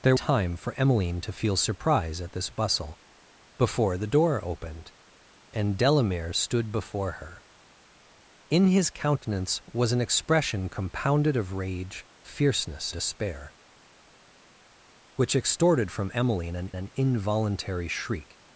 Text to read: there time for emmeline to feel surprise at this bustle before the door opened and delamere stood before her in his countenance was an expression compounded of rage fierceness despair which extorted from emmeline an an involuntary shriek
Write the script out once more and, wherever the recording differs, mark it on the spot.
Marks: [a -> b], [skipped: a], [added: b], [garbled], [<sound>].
there time for emmeline to feel surprise at this bustle before the door opened and delamere stood before her in his countenance was an expression compounded of rage fierceness despair which extorted from emmeline an an involuntary shriek